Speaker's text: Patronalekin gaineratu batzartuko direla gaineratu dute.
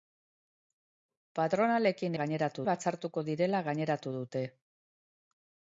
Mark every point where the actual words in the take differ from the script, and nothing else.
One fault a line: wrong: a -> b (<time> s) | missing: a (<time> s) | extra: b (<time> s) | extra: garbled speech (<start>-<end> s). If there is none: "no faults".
no faults